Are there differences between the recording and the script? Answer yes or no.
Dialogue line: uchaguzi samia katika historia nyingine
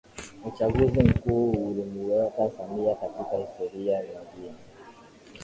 yes